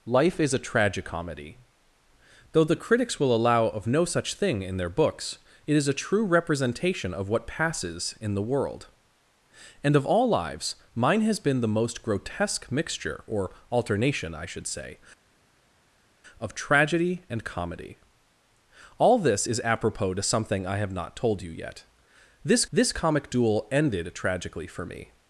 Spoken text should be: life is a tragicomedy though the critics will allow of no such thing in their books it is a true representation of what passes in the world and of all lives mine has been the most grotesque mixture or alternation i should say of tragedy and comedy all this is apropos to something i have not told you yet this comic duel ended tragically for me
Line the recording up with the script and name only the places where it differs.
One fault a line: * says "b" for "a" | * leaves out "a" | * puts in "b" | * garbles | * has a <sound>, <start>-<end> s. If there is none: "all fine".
* puts in "this"